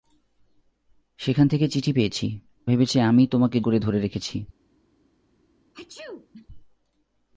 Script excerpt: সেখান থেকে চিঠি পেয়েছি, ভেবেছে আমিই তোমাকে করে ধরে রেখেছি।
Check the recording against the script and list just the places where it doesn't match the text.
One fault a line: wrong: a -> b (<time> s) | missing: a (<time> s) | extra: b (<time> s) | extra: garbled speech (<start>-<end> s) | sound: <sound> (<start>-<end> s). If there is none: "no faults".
sound: sneeze (5.7-6.5 s)